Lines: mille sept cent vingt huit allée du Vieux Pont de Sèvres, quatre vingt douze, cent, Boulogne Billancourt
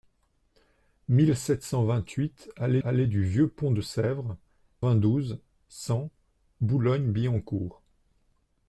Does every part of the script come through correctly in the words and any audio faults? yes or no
no